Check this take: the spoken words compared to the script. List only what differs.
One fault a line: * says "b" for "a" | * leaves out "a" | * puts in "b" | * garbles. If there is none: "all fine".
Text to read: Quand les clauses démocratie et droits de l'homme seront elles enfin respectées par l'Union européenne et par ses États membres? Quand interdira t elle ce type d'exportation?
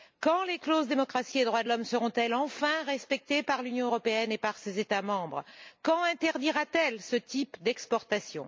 all fine